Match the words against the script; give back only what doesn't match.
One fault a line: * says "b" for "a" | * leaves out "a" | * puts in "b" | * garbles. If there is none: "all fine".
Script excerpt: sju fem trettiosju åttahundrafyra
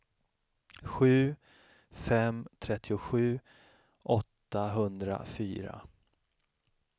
all fine